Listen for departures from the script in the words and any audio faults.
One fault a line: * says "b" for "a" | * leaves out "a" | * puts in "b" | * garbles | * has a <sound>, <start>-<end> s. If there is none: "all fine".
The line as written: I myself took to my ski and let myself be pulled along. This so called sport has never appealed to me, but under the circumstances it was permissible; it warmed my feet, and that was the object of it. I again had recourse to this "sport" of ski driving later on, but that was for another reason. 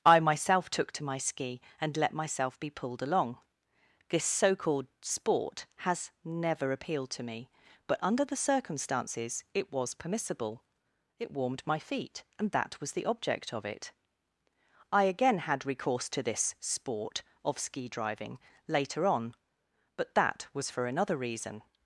all fine